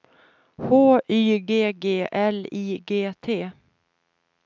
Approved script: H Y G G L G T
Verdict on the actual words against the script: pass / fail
fail